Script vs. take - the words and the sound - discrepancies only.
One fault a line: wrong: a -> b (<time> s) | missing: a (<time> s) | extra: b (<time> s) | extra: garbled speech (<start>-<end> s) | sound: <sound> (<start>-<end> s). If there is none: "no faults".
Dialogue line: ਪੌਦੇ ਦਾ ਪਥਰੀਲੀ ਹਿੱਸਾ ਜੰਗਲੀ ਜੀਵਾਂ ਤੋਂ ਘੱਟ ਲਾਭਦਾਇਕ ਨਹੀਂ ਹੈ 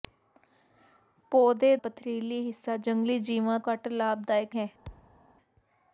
missing: ਦਾ (1.8 s)
missing: ਤੋਂ (3.6 s)
missing: ਨਹੀਂ (4.6 s)
sound: thud (4.8-5.2 s)